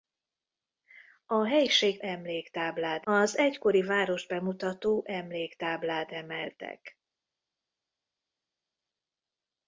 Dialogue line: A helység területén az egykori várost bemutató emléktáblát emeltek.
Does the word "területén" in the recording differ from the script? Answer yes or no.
yes